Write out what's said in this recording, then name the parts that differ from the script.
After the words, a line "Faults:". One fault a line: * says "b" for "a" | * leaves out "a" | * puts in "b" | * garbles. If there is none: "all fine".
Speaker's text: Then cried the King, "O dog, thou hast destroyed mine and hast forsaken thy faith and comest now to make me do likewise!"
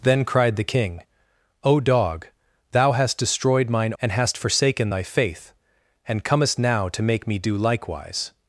Then cried the King, "O dog, thou hast destroyed mine and hast forsaken thy faith and comest now to make me do likewise!"
Faults:
all fine